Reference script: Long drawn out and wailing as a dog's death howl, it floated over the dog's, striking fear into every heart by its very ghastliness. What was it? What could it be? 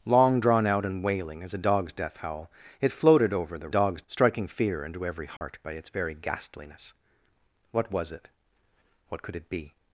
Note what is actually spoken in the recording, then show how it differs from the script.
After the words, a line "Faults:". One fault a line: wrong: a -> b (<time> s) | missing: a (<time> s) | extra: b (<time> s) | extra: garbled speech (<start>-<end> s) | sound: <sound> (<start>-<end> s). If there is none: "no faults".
Long drawn out and wailing as a dog's death howl, it floated over the dog's, striking fear into every heart by its very ghastliness. What was it? What could it be?
Faults:
sound: dropout (5.4-5.4 s)